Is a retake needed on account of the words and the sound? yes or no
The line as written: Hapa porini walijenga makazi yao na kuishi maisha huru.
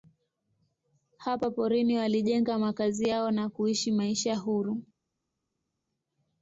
no